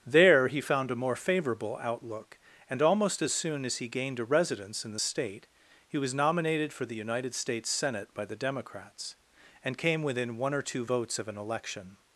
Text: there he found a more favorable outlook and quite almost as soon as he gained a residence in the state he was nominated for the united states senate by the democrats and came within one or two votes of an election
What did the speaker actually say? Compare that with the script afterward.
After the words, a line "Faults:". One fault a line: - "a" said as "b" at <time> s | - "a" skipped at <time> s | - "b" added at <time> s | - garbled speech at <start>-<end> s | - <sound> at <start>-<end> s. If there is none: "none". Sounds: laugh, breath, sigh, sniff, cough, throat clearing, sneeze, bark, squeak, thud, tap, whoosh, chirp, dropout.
there he found a more favorable outlook and almost as soon as he gained a residence in the state he was nominated for the united states senate by the democrats and came within one or two votes of an election
Faults:
- "quite" skipped at 2.8 s